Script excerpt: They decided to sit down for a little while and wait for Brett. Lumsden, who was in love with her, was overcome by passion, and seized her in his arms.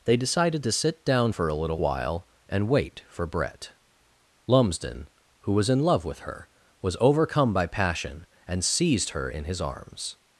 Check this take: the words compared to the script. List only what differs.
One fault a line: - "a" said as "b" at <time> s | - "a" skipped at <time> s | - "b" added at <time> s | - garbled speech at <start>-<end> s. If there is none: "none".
none